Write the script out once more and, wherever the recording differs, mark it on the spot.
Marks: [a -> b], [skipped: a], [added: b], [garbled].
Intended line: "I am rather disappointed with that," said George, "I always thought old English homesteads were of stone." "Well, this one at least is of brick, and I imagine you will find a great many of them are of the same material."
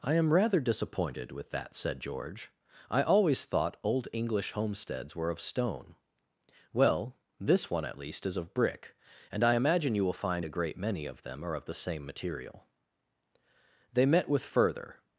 "I am rather disappointed with that," said George, "I always thought old English homesteads were of stone." "Well, this one at least is of brick, and I imagine you will find a great many of them are of the same material." [added: They met with further]